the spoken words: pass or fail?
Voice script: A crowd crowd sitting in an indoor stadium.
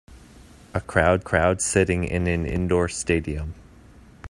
pass